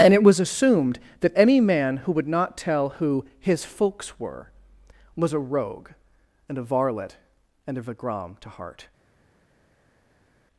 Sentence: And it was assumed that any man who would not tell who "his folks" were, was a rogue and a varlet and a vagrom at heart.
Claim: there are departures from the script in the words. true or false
true